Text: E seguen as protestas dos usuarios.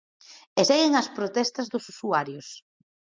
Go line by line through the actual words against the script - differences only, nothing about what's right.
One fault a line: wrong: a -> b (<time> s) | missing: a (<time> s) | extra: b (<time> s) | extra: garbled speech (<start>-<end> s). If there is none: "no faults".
no faults